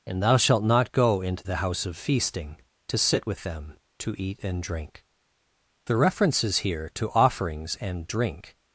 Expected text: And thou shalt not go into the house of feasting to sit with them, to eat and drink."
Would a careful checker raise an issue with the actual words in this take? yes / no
yes